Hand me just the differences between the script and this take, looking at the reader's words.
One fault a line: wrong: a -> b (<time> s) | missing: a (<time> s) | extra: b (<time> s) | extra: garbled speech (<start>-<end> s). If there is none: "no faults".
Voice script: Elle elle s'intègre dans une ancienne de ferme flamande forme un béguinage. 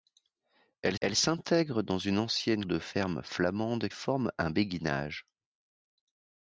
no faults